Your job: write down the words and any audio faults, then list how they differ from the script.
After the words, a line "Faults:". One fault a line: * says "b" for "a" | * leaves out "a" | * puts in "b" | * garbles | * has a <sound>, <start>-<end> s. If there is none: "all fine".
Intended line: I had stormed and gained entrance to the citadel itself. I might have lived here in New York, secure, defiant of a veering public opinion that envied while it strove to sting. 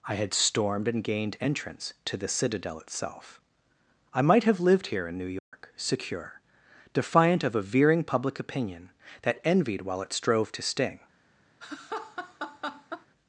I had stormed and gained entrance to the citadel itself. I might have lived here in New York, secure, defiant of a veering public opinion that envied while it strove to sting.
Faults:
* has a dropout, 5.4-5.5 s
* has a laugh, 11.6-13.1 s